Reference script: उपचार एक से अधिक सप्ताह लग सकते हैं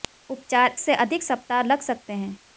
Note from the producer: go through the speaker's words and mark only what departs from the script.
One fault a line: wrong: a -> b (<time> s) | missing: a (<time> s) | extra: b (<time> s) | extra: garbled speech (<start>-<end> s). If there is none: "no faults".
missing: एक (0.8 s)